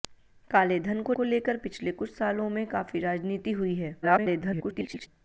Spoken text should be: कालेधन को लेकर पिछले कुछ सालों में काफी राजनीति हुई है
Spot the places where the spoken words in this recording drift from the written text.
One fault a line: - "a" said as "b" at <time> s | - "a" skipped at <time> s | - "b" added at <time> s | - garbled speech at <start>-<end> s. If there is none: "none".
- "को" added at 1.1 s
- garbled speech at 4.0-5.1 s